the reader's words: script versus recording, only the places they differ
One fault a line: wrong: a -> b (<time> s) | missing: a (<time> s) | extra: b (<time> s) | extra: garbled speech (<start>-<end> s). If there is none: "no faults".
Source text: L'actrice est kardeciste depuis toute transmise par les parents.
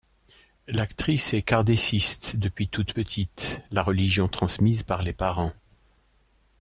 extra: petite la religion (2.9 s)